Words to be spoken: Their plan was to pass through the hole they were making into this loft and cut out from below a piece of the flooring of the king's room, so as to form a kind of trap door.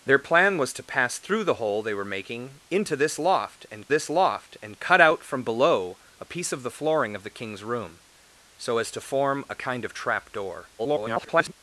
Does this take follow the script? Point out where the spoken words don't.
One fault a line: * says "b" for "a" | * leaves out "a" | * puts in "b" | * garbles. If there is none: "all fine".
* puts in "this loft and"
* garbles